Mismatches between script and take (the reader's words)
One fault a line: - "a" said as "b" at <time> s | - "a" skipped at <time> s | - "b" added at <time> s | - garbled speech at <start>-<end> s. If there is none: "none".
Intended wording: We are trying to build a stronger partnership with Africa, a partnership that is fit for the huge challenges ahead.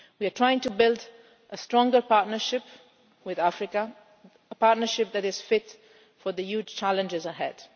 none